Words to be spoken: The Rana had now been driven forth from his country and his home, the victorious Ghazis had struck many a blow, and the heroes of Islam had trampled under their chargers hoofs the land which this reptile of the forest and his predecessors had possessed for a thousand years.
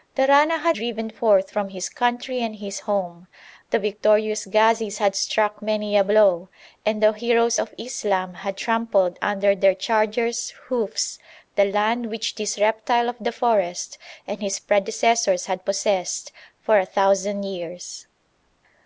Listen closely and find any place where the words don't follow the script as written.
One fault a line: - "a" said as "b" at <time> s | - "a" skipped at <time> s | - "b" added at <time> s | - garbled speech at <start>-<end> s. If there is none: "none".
- "now been" skipped at 0.8 s